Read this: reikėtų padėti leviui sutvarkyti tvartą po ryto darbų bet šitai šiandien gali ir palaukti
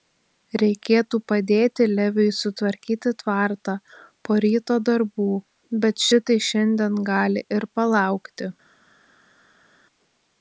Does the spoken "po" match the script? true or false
true